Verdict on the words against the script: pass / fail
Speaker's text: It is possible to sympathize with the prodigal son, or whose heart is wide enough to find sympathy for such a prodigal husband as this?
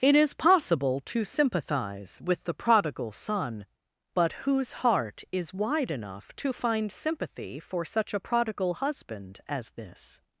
fail